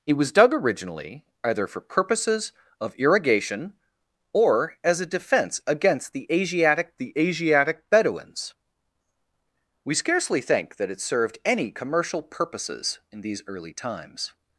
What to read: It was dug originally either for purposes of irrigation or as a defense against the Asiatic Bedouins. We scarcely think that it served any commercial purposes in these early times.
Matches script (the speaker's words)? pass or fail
fail